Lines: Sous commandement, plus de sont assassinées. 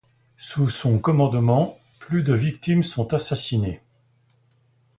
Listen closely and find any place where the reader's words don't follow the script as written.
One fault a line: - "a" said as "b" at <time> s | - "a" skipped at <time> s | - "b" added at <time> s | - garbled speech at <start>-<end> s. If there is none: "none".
- "son" added at 0.7 s
- "victimes" added at 2.3 s